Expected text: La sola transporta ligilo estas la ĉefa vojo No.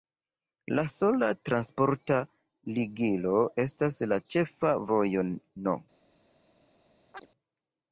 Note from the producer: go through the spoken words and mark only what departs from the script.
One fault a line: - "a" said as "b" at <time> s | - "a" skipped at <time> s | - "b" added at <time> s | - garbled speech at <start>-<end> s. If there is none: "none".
none